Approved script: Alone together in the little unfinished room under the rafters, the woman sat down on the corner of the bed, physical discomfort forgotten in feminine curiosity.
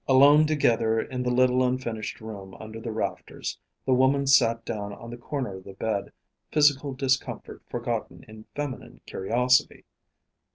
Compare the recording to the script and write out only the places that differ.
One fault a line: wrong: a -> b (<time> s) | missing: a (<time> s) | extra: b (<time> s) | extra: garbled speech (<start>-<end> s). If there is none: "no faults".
no faults